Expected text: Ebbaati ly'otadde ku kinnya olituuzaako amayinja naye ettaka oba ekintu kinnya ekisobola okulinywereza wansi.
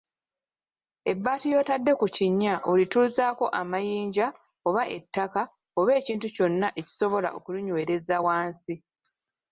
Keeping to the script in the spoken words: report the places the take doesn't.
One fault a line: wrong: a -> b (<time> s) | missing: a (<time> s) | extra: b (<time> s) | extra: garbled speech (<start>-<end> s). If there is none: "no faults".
wrong: naye -> oba (4.7 s)
wrong: kinnya -> kyonna (6.3 s)